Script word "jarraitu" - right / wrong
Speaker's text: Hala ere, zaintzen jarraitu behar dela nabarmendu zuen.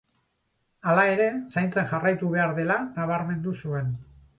right